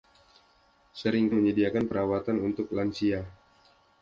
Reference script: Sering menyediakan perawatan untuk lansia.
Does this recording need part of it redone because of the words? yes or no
no